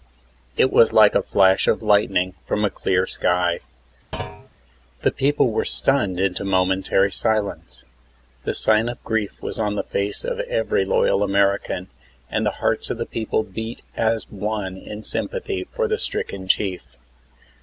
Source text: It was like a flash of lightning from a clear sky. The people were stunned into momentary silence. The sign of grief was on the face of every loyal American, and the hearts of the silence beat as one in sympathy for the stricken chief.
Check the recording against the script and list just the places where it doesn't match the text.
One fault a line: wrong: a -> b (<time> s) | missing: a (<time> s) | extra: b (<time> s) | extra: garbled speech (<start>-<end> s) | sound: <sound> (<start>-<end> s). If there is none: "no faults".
sound: thud (4.1-4.5 s)
wrong: silence -> people (13.1 s)